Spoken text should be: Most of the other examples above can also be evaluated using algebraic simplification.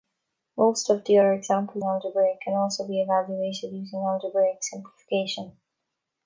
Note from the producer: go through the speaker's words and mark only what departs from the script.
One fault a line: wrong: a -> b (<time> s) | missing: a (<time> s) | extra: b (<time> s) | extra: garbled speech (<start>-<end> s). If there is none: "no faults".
wrong: above -> algebraic (1.8 s)